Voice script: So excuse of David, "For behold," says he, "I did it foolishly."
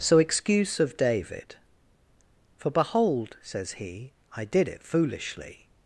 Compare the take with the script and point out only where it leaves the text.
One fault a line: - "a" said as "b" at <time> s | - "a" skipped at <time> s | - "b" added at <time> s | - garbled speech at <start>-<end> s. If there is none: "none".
none